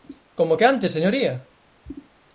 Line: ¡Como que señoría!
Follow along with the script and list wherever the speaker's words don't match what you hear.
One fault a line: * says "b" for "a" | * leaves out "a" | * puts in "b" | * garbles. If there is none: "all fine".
* puts in "antes"